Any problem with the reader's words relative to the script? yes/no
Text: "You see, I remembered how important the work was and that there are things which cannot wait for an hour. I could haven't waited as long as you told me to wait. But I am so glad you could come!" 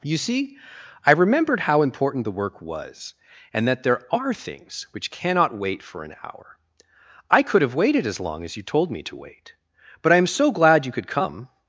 yes